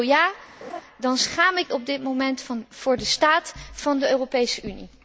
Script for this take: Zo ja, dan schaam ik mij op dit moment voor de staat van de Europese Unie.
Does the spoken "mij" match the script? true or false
false